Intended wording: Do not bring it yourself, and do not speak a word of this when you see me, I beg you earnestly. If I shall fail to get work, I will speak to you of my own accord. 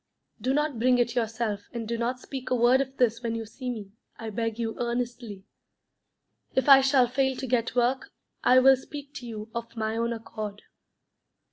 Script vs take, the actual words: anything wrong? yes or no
no